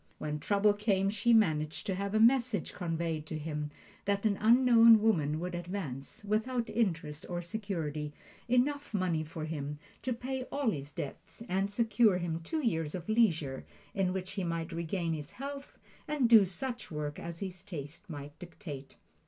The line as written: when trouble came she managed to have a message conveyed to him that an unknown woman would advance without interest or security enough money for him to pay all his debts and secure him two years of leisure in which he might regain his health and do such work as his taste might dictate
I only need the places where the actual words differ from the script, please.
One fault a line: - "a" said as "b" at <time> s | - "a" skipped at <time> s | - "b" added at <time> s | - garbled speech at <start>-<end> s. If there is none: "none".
none